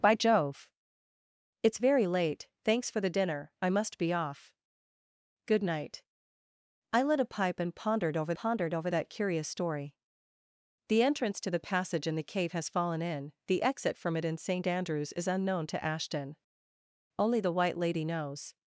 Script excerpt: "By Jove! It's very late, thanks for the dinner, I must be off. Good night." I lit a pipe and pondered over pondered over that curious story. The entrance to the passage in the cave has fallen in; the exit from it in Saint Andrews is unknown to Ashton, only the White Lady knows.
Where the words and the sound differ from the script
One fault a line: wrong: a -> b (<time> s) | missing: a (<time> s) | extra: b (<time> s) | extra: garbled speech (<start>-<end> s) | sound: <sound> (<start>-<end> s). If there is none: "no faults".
no faults